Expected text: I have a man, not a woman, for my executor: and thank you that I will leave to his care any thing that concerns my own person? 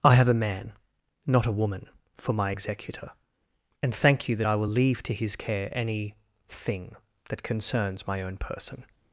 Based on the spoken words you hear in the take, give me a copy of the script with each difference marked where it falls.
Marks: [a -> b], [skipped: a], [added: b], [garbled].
I have a man, not a woman, for my executor: and thank you that I will leave to his care any thing that concerns my own person?